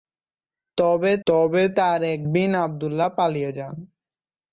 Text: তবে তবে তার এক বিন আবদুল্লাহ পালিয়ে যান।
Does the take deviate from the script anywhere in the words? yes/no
no